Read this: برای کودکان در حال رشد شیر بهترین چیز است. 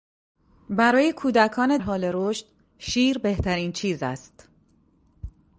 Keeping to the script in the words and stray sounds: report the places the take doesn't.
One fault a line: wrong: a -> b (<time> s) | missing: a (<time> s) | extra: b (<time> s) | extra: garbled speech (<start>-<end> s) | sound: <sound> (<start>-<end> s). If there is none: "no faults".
missing: در (1.8 s)